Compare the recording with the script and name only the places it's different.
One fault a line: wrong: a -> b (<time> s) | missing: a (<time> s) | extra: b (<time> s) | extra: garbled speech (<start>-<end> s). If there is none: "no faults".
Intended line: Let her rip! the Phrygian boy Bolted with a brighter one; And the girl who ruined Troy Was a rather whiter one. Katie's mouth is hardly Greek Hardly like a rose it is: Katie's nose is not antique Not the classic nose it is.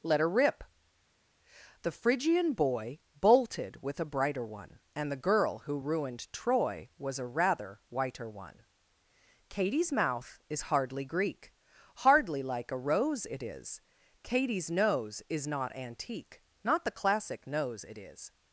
no faults